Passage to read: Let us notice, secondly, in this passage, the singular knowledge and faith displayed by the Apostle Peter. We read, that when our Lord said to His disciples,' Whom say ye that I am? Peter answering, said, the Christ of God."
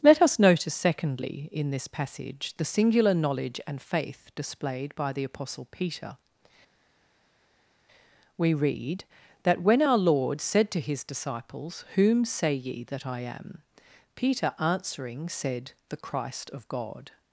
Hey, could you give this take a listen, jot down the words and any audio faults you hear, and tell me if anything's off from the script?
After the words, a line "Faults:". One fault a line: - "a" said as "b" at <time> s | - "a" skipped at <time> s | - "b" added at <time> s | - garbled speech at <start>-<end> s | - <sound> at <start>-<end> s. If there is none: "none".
Let us notice, secondly, in this passage, the singular knowledge and faith displayed by the Apostle Peter. We read, that when our Lord said to His disciples,' Whom say ye that I am? Peter answering, said, the Christ of God."
Faults:
none